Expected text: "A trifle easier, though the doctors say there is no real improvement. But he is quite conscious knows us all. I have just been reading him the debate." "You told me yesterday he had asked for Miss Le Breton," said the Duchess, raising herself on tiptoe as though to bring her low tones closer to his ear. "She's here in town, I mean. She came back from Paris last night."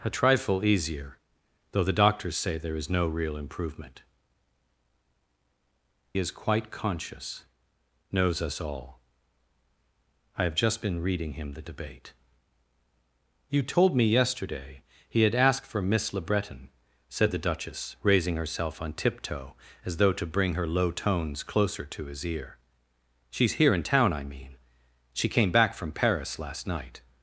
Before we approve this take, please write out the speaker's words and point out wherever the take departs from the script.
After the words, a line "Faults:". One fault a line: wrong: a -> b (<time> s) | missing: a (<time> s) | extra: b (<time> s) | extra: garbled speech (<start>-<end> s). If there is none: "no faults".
"A trifle easier, though the doctors say there is no real improvement. Is quite conscious knows us all. I have just been reading him the debate." "You told me yesterday he had asked for Miss Le Breton," said the Duchess, raising herself on tiptoe as though to bring her low tones closer to his ear. "She's here in town, I mean. She came back from Paris last night."
Faults:
missing: But he (4.0 s)